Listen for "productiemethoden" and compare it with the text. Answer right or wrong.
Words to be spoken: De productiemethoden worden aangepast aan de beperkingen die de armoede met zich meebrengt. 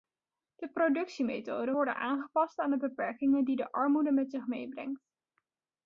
right